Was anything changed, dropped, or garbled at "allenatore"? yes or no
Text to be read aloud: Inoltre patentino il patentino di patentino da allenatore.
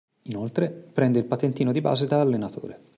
no